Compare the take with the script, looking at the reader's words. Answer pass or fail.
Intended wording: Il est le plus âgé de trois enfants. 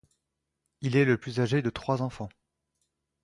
pass